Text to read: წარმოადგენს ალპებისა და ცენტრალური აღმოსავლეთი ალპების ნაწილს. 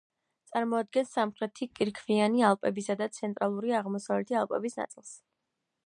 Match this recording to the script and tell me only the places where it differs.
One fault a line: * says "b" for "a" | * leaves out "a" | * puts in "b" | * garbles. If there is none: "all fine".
* puts in "სამხრეთი კირქვიანი"